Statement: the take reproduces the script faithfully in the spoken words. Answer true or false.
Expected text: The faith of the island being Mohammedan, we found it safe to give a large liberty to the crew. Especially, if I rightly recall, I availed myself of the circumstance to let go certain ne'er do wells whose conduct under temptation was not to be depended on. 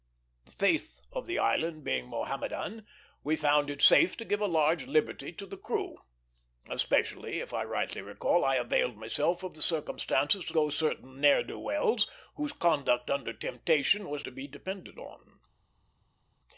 false